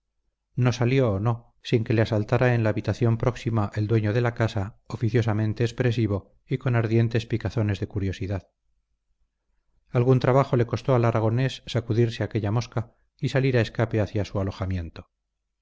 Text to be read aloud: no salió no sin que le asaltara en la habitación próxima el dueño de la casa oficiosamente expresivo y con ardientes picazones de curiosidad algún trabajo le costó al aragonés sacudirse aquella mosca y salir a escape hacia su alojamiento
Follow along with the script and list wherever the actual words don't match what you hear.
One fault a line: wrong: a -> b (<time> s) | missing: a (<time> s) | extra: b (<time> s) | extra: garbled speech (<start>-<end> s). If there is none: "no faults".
no faults